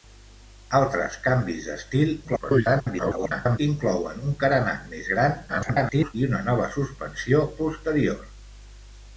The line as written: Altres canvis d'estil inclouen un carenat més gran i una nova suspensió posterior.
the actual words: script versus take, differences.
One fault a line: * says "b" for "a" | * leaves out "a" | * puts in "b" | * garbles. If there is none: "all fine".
* garbles
* garbles